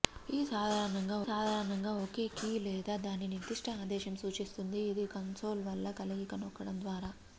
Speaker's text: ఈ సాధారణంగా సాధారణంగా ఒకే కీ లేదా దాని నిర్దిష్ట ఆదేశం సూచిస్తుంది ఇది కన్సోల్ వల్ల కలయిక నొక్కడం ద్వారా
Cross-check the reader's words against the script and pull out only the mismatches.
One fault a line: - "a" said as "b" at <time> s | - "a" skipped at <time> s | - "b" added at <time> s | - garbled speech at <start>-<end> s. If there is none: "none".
none